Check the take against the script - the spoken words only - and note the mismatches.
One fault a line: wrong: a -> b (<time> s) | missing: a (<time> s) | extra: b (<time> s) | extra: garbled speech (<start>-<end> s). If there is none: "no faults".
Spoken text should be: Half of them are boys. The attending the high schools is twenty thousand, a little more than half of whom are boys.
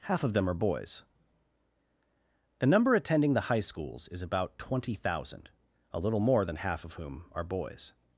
extra: number (2.6 s)
extra: about (4.2 s)